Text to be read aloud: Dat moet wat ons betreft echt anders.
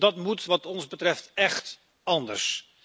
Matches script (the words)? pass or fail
pass